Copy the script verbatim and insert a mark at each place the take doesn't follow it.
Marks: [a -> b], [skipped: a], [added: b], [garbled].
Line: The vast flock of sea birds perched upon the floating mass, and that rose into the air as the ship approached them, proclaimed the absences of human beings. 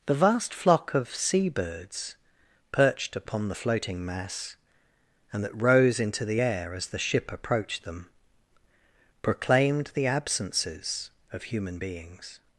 The vast flock of sea birds perched upon the floating mass, and that rose into the air as the ship approached them, proclaimed the absences of human beings.